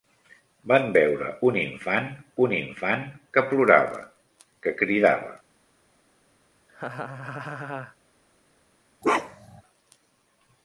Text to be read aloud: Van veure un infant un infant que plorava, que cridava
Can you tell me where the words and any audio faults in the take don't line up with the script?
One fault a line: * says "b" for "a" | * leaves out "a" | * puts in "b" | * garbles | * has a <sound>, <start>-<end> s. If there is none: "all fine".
* has a laugh, 6.7-8.0 s
* has a bark, 9.0-9.6 s